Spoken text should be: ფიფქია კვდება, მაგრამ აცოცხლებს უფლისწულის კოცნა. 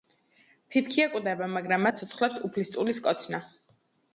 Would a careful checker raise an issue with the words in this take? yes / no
no